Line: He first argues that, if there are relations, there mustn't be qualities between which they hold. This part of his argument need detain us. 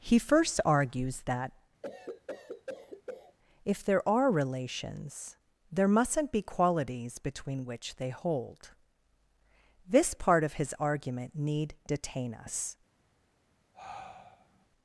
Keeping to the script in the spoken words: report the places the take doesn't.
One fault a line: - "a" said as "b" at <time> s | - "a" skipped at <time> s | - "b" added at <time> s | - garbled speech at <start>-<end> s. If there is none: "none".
none